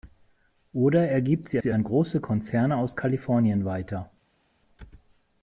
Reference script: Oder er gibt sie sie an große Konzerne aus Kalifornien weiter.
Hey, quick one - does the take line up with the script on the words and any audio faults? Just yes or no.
yes